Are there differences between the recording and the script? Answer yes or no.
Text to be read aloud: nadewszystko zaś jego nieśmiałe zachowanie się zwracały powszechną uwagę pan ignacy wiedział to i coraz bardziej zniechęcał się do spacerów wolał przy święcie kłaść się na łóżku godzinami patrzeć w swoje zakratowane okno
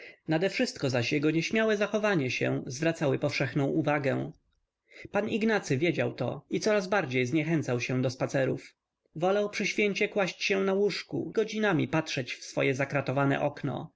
no